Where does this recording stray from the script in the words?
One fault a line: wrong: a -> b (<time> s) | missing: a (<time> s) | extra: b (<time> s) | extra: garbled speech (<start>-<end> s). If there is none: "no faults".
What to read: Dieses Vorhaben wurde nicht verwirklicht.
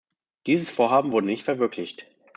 no faults